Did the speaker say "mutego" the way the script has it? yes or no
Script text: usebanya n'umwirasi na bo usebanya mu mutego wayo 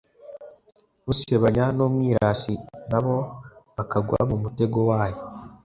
yes